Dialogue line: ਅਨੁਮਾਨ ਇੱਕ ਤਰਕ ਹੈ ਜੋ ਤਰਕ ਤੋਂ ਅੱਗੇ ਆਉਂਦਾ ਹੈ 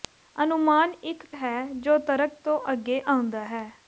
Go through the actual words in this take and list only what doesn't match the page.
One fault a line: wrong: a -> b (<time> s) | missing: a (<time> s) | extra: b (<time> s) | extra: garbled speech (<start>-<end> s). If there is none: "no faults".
missing: ਤਰਕ (1.2 s)